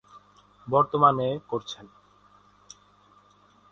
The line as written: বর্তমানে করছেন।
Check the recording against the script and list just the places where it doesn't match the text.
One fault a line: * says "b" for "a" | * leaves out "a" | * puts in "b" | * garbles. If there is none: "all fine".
all fine